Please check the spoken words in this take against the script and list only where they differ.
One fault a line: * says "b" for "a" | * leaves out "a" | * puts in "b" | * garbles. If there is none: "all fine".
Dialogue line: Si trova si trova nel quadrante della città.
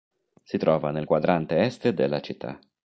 * leaves out "si trova"
* puts in "est"